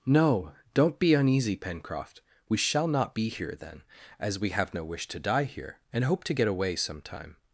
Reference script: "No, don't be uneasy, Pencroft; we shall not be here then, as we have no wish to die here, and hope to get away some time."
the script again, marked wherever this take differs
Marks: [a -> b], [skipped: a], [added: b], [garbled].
"No, don't be uneasy, Pencroft; we shall not be here then, as we have no wish to die here, and hope to get away some time."